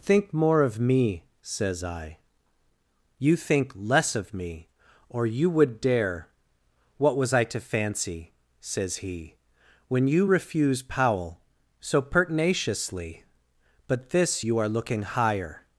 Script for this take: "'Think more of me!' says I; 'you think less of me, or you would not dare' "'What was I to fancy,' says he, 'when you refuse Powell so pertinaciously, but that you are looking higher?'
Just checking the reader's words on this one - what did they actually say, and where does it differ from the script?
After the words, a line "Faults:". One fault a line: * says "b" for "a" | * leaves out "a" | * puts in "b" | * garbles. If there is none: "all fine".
"'Think more of me!' says I; 'you think less of me, or you would dare' "'What was I to fancy,' says he, 'when you refuse Powell so pertinaciously, but this you are looking higher?'
Faults:
* leaves out "not"
* says "this" for "that"